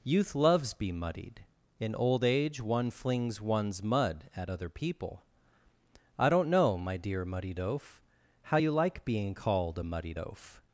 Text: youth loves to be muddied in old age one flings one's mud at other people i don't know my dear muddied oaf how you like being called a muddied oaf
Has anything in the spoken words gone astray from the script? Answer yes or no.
yes